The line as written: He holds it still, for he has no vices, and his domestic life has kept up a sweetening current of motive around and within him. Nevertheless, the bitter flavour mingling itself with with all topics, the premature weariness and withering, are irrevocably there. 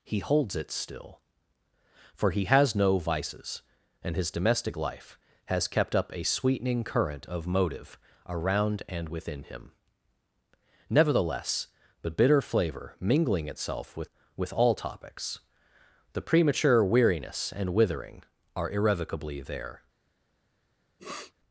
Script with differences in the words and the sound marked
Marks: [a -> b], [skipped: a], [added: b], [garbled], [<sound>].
He holds it still, for he has no vices, and his domestic life has kept up a sweetening current of motive around and within him. Nevertheless, the bitter flavour mingling itself with with all topics, the premature weariness and withering, are irrevocably there. [sniff]